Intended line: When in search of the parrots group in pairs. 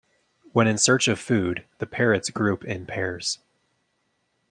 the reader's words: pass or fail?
fail